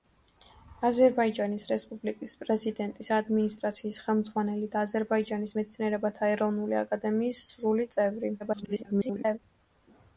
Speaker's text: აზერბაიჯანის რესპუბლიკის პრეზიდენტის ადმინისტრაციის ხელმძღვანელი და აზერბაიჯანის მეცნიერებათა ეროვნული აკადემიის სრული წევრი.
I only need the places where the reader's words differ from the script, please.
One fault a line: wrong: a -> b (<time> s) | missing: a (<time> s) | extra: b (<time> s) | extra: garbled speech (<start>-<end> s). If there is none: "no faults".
extra: garbled speech (8.4-9.4 s)